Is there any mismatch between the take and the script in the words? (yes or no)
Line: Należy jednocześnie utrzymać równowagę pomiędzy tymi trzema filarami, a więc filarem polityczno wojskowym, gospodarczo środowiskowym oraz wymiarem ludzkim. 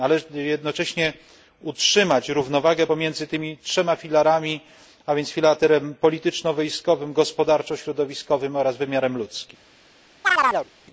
no